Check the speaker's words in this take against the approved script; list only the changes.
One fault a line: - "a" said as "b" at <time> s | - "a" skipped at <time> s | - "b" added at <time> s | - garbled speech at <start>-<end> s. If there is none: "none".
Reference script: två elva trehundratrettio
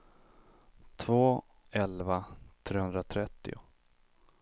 none